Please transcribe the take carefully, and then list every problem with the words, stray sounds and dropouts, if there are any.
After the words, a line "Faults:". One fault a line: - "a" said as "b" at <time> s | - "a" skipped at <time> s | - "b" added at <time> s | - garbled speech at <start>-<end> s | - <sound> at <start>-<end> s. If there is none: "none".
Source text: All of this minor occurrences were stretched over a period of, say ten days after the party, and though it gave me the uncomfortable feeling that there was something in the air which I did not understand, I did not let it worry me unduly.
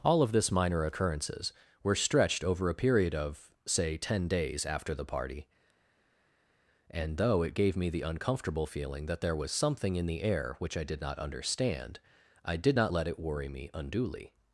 All of this minor occurrences were stretched over a period of, say ten days after the party, and though it gave me the uncomfortable feeling that there was something in the air which I did not understand, I did not let it worry me unduly.
Faults:
none